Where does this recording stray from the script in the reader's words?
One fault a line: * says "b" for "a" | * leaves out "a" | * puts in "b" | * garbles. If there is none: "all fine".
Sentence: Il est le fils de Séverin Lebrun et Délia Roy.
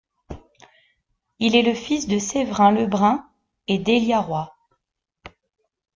all fine